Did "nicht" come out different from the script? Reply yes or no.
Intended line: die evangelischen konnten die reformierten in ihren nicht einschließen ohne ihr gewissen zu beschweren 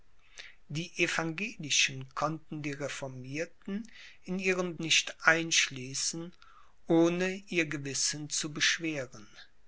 no